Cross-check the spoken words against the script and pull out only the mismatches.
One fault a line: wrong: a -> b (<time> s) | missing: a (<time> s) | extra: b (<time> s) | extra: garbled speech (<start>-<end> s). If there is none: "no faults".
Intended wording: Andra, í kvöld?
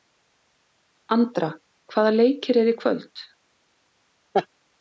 extra: hvaða leikir eru (1.9 s)